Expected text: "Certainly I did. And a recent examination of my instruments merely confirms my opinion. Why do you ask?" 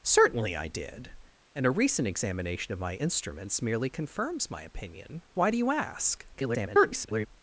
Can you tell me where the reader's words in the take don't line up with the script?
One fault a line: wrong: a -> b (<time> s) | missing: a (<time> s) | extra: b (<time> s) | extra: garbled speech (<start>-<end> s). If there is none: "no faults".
extra: garbled speech (6.3-7.3 s)